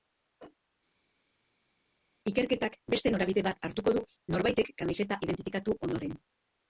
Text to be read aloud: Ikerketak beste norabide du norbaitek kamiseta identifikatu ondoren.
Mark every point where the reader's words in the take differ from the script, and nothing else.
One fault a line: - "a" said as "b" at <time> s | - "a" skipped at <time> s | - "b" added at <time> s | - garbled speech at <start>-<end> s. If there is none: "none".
- "bat hartuko" added at 3.5 s